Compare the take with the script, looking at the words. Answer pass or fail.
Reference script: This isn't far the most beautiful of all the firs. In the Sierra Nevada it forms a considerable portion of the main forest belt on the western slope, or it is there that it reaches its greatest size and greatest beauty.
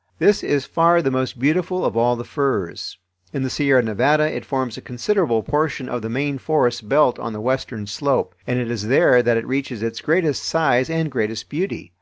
fail